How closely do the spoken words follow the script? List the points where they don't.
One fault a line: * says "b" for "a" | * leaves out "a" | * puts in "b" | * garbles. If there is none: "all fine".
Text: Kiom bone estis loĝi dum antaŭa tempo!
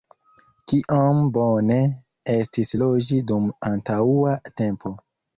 all fine